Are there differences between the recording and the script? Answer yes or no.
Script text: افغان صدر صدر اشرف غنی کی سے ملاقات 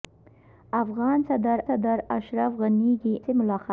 no